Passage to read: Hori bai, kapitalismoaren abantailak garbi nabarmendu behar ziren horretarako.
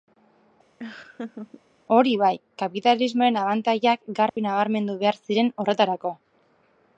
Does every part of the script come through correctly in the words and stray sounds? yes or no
no